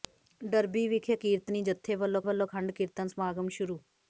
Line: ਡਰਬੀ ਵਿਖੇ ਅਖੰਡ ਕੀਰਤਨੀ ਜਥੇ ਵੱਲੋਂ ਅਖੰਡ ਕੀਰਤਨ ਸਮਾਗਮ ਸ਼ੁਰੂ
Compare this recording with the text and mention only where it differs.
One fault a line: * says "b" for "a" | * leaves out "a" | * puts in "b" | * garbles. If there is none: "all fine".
* leaves out "ਅਖੰਡ"
* puts in "ਵੱਲੋਂ"